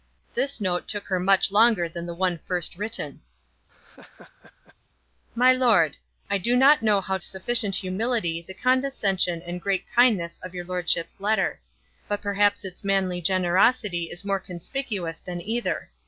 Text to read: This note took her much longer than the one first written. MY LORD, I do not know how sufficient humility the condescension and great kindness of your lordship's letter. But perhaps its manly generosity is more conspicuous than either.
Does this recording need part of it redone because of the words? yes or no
no